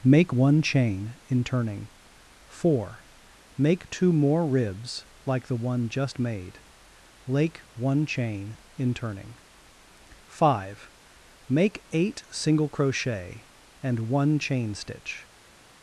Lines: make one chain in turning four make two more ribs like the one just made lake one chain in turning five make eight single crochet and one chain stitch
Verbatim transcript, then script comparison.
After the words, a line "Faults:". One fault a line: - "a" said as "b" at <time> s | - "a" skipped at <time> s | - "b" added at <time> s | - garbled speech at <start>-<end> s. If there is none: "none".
make one chain in turning four make two more ribs like the one just made lake one chain in turning five make eight single crochet and one chain stitch
Faults:
none